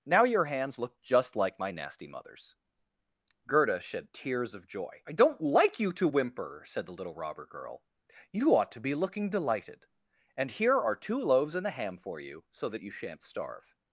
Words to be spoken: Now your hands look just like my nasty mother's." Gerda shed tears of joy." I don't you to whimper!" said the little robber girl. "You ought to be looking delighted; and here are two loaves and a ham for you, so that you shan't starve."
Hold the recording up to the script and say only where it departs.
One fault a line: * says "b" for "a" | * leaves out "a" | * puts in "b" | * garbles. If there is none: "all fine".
* puts in "like"